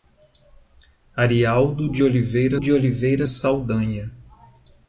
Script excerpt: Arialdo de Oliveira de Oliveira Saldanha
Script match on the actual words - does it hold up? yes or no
yes